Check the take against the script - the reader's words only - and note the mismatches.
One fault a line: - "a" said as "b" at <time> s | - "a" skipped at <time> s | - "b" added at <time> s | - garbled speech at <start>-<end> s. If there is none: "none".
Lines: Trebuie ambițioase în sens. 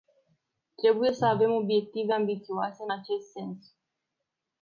- "să avem obiective" added at 1.1 s
- "acest" added at 2.9 s